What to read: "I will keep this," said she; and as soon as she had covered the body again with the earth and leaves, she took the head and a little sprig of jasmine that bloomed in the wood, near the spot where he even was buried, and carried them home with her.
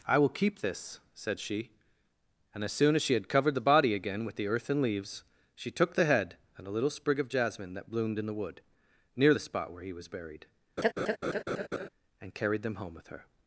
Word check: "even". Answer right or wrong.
wrong